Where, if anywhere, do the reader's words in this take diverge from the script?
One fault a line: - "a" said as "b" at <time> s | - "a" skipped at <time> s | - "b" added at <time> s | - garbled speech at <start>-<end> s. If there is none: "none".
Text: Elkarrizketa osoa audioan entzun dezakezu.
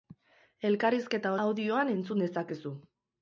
- "osoa" skipped at 1.4 s